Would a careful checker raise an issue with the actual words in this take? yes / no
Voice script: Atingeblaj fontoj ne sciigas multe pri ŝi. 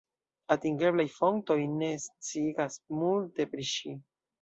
no